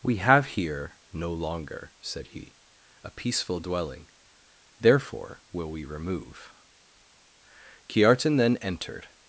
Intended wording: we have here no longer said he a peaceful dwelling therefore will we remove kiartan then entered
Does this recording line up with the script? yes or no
yes